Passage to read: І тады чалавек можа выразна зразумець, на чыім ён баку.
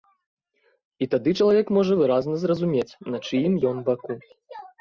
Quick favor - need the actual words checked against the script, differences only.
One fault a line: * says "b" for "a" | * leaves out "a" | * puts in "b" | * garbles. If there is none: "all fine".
all fine